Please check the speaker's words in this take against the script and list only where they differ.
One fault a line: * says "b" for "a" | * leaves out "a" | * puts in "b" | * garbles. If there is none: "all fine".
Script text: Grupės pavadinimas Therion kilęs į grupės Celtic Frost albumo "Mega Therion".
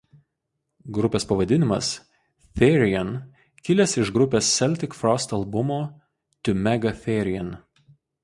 * says "iš" for "į"
* puts in "To"